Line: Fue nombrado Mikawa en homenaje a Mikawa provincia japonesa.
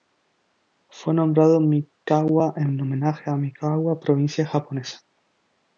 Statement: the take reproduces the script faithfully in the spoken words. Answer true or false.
true